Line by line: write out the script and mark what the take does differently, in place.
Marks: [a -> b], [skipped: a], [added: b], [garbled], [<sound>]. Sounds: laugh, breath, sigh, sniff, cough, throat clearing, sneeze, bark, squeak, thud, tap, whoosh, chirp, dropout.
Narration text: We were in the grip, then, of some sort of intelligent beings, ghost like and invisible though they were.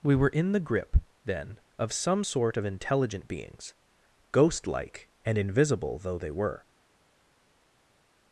We were in the grip, then, of some sort of intelligent beings, ghost like and invisible though they were.